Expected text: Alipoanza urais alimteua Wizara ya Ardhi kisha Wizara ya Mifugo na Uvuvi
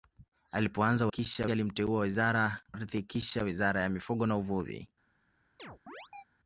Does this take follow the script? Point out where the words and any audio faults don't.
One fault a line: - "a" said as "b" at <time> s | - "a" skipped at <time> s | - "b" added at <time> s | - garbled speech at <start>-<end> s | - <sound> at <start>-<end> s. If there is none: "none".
- "urais" said as "kisha" at 1.1 s
- "ya" skipped at 2.6 s
- chirp at 5.6-6.2 s